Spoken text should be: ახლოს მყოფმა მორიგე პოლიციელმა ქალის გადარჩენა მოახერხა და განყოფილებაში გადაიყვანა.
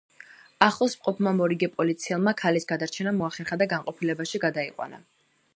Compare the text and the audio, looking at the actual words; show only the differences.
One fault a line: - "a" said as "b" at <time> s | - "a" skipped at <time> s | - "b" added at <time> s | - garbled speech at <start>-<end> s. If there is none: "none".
none